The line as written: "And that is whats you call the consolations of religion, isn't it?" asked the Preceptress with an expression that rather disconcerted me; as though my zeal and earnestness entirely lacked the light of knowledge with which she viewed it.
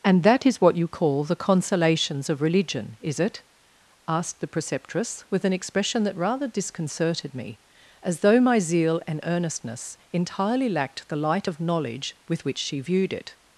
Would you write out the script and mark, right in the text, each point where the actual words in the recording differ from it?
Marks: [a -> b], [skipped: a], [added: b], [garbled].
"And that is [whats -> what] you call the consolations of religion, [isn't -> is] it?" asked the Preceptress with an expression that rather disconcerted me; as though my zeal and earnestness entirely lacked the light of knowledge with which she viewed it.